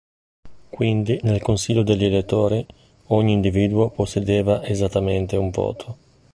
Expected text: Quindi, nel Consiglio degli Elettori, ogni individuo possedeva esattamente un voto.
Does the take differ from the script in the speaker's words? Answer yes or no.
no